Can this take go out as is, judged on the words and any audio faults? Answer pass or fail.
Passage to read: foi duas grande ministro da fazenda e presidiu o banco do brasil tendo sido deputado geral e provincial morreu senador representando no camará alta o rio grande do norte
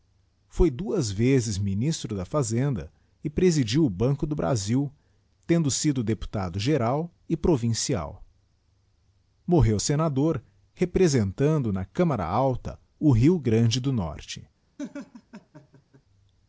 fail